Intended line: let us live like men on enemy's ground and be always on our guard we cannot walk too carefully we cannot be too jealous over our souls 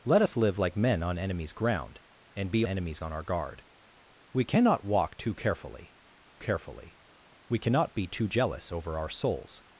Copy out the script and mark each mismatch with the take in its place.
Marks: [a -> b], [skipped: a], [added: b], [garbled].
let us live like men on enemy's ground and be [always -> enemy's] on our guard we cannot walk too carefully [added: carefully] we cannot be too jealous over our souls